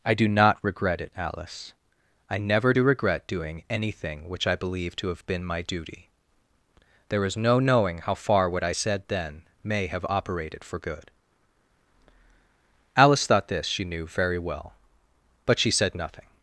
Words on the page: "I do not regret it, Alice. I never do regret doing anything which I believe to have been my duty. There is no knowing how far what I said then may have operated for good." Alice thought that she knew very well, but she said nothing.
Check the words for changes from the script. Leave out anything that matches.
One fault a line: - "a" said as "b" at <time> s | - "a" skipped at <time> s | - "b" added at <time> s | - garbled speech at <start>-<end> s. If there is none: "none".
- "that" said as "this" at 13.5 s